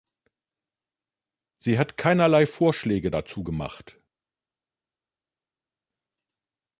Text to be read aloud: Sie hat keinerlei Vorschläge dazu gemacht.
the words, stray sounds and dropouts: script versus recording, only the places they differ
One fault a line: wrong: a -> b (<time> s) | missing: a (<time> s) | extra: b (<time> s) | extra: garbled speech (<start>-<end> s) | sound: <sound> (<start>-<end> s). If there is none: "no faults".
no faults